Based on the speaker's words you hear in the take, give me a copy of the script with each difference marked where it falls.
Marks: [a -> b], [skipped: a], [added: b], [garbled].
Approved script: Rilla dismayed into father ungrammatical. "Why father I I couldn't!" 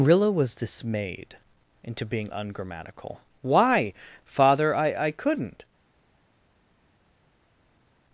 Rilla [added: was] dismayed into [father -> being] ungrammatical. "Why father I I couldn't!"